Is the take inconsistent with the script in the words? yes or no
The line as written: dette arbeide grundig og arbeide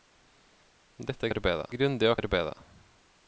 no